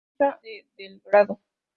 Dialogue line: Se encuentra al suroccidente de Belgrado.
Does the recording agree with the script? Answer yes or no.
no